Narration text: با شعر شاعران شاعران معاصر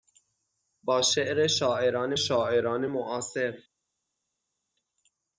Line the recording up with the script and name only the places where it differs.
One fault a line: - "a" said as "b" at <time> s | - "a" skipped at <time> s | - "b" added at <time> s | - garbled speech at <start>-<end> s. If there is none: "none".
none